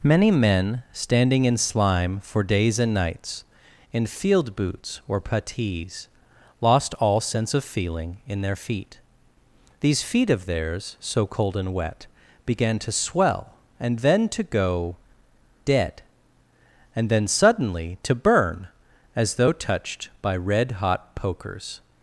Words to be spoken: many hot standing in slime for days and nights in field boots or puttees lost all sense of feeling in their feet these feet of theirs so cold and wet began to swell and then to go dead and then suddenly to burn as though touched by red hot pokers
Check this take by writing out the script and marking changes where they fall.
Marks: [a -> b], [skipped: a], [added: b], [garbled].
many [hot -> men] standing in slime for days and nights in field boots or puttees lost all sense of feeling in their feet these feet of theirs so cold and wet began to swell and then to go dead and then suddenly to burn as though touched by red hot pokers